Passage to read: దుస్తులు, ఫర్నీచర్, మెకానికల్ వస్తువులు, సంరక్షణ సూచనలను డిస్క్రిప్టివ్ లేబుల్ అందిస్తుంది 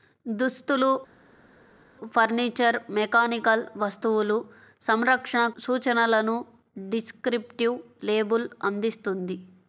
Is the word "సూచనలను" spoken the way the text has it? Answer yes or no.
yes